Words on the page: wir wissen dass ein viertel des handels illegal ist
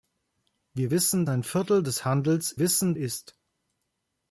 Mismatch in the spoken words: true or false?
true